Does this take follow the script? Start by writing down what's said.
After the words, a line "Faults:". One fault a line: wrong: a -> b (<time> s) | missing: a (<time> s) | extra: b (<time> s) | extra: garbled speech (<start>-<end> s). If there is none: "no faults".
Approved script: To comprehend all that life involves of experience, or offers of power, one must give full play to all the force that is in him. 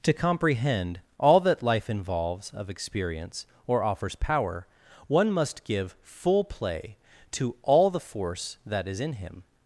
To comprehend all that life involves of experience, or offers power, one must give full play to all the force that is in him.
Faults:
missing: of (4.2 s)